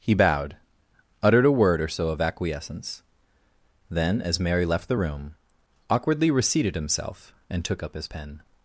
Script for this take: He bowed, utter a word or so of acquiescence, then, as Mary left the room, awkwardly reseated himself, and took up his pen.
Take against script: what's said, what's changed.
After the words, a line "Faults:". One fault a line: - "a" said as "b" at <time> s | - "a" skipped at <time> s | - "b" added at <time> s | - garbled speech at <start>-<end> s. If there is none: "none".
He bowed, uttered a word or so of acquiescence, then, as Mary left the room, awkwardly reseated himself, and took up his pen.
Faults:
- "utter" said as "uttered" at 1.2 s